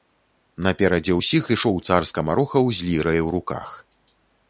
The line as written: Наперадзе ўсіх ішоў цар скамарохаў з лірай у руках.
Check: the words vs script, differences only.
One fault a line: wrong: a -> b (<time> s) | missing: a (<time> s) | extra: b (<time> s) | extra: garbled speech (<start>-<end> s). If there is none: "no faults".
no faults